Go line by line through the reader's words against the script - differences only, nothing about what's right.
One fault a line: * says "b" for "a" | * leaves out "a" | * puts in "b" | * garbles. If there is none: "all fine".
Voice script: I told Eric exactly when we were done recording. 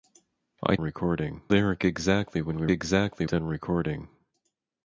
* says "recording" for "told"
* says "exactly" for "were"